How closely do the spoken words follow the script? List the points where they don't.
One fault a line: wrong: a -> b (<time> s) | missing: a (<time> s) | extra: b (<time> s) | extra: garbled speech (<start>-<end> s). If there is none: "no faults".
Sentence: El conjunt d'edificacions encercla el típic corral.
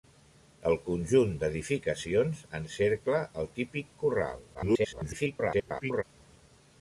extra: garbled speech (4.5-6.0 s)